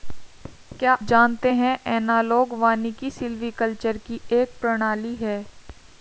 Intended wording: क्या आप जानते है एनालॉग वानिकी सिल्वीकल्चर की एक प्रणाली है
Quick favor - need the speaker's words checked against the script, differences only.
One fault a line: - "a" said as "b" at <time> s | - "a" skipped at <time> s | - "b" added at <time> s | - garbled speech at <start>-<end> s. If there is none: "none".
- "आप" skipped at 0.9 s